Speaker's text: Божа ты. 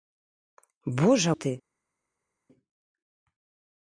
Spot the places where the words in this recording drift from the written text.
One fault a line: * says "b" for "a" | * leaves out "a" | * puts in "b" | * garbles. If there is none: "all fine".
all fine